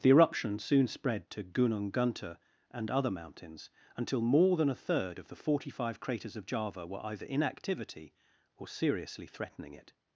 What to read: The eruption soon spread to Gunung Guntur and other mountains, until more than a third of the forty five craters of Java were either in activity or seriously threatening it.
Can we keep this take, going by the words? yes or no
yes